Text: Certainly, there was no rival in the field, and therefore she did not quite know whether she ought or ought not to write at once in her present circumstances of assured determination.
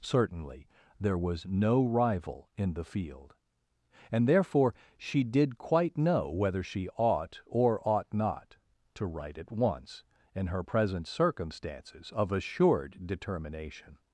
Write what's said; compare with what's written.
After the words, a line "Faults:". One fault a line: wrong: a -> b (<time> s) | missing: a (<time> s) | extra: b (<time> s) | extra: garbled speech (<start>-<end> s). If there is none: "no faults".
Certainly, there was no rival in the field, and therefore she did quite know whether she ought or ought not to write at once in her present circumstances of assured determination.
Faults:
missing: not (5.6 s)